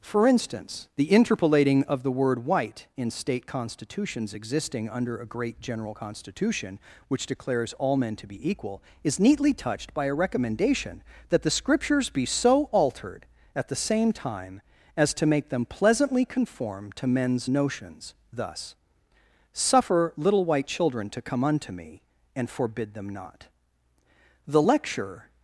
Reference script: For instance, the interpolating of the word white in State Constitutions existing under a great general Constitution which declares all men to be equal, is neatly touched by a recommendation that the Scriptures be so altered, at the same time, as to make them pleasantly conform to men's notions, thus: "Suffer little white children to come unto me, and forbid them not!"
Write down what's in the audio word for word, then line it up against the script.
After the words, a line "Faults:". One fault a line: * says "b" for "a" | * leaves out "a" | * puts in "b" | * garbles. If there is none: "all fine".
For instance, the interpolating of the word white in State Constitutions existing under a great general Constitution which declares all men to be equal, is neatly touched by a recommendation that the Scriptures be so altered, at the same time, as to make them pleasantly conform to men's notions, thus: "Suffer little white children to come unto me, and forbid them not!" The lecture
Faults:
* puts in "The lecture"